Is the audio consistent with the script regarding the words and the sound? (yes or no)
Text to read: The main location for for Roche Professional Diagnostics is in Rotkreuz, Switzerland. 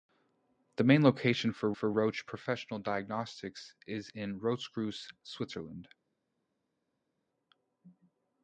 yes